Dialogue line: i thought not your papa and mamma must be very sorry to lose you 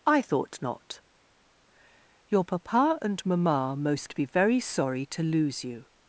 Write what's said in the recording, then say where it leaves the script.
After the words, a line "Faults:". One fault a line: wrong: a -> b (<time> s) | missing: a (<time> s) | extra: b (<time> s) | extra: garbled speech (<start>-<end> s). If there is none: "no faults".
i thought not your papa and mamma most be very sorry to lose you
Faults:
wrong: must -> most (3.8 s)